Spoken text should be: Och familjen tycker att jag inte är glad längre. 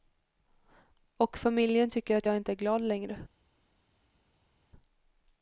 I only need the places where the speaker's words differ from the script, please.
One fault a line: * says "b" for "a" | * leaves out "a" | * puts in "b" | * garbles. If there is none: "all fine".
all fine